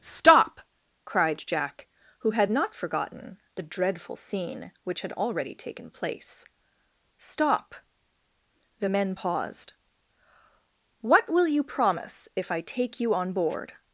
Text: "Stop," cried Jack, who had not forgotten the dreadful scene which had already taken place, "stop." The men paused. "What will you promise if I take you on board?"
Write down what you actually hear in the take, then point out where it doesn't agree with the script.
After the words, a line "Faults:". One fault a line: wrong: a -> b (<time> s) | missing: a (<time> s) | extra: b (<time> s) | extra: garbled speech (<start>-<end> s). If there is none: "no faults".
"Stop," cried Jack, who had not forgotten the dreadful scene which had already taken place, "stop." The men paused. "What will you promise if I take you on board?"
Faults:
no faults